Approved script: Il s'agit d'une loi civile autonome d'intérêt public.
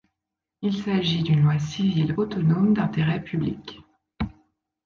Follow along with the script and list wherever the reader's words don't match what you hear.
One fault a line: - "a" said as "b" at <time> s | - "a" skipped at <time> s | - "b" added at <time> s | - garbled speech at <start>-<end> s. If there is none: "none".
none